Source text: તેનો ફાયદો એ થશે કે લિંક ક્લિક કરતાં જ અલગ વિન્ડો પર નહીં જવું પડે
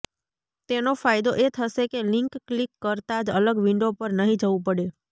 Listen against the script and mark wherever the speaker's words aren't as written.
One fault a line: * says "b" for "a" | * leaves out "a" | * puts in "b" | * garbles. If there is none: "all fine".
all fine